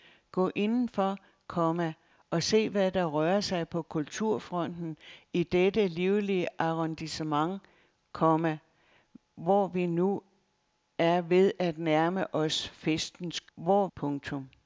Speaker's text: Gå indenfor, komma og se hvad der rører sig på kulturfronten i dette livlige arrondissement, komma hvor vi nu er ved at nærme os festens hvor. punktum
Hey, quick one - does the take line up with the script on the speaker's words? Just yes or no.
yes